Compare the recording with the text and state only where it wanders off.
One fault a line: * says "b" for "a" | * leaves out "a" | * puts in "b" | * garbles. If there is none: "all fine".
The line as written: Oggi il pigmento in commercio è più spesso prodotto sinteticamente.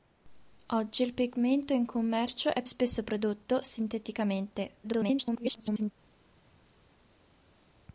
* leaves out "più"
* garbles